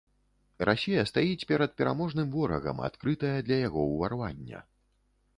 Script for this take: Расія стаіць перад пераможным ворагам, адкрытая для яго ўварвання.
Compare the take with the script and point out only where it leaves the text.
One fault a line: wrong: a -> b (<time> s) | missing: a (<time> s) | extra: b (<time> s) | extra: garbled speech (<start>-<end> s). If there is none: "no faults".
no faults